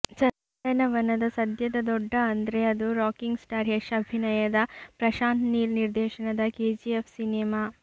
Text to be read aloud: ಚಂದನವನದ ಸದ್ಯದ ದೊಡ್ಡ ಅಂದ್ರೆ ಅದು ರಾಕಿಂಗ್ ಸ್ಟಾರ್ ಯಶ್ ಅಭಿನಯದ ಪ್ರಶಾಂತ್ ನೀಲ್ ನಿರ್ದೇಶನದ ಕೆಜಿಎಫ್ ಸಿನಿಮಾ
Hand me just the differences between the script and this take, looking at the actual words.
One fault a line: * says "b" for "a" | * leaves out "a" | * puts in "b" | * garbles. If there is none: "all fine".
all fine